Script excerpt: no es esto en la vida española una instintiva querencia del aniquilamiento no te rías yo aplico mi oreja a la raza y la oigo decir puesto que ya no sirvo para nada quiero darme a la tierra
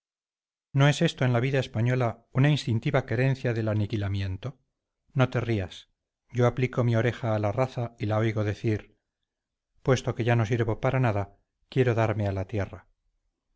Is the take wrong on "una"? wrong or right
right